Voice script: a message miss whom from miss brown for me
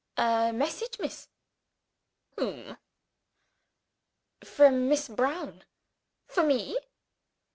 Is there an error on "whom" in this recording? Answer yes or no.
no